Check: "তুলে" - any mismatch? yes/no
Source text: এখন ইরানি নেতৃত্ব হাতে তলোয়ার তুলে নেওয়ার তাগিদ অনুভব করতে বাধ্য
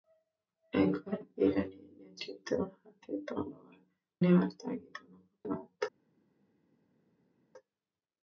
yes